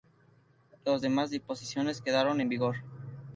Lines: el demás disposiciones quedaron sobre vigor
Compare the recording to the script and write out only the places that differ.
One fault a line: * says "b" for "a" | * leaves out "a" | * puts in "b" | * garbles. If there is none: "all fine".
* says "las" for "el"
* says "en" for "sobre"